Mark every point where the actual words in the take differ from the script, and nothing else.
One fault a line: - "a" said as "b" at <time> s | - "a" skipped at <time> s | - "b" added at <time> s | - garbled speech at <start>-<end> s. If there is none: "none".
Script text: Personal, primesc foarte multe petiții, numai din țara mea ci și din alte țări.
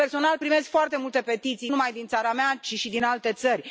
none